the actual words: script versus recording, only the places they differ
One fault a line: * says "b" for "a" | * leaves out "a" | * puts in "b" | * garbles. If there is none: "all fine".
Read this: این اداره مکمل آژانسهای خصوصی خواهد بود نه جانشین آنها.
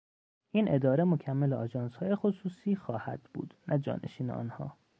all fine